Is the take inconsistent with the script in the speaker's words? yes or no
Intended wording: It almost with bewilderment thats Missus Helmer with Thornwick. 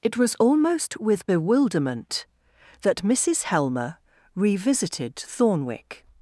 yes